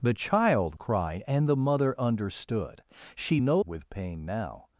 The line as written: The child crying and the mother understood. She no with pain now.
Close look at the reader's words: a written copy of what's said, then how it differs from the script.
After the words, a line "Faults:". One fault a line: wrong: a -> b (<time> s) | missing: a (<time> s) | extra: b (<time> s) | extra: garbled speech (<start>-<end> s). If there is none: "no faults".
The child crying and the mother understood. She no with pain now.
Faults:
no faults